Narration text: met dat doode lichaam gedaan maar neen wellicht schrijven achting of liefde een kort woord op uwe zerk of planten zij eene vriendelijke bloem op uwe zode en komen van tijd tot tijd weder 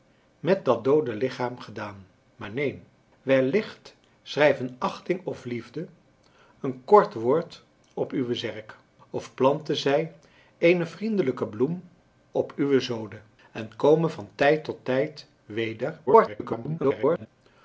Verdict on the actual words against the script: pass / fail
fail